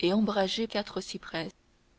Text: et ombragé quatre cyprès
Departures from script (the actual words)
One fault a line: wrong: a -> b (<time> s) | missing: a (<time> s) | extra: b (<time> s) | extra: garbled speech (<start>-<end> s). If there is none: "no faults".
no faults